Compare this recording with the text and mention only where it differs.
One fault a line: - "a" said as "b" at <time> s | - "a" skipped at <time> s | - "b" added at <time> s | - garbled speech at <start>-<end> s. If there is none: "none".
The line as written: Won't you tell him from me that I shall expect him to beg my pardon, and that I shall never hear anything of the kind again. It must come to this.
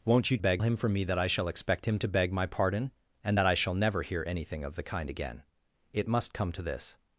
- "tell" said as "beg" at 0.4 s